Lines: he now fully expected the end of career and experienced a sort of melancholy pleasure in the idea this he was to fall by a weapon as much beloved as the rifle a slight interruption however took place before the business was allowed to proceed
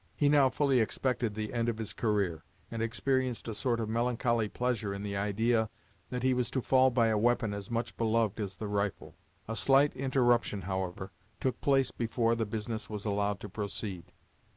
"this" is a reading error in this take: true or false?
true